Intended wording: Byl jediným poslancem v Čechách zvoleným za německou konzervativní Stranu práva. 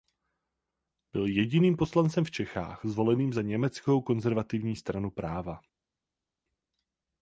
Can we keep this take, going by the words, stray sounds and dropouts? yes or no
yes